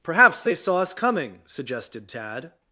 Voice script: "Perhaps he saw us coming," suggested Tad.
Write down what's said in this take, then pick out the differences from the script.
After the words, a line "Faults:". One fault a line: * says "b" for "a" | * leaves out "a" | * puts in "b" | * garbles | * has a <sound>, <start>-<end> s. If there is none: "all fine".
"Perhaps they saw us coming," suggested Tad.
Faults:
* says "they" for "he"